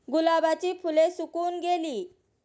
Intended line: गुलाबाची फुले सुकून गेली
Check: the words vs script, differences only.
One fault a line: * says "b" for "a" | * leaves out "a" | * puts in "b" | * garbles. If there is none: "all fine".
all fine